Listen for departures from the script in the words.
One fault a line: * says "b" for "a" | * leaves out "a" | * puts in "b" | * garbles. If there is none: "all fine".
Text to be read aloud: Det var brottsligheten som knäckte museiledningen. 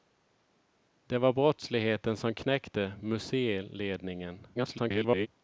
* garbles